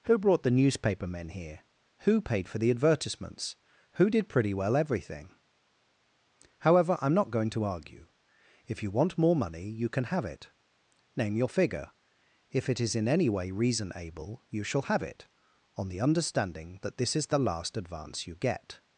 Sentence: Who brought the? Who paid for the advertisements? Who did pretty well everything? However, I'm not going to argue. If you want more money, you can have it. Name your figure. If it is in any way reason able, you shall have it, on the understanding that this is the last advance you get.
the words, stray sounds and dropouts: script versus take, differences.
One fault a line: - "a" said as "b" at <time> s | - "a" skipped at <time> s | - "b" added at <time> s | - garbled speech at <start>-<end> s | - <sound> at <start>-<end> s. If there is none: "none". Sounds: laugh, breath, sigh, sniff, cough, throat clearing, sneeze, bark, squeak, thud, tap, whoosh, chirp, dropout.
- "newspaper men here" added at 0.5 s